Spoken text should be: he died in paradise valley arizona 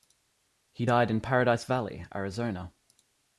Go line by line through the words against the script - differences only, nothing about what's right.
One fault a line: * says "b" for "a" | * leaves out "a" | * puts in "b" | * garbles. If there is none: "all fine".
all fine